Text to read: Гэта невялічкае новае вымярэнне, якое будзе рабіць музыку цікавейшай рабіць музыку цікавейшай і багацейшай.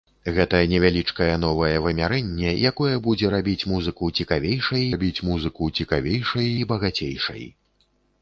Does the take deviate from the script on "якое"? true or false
false